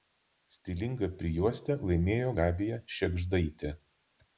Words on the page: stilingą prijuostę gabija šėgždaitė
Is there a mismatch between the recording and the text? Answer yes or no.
yes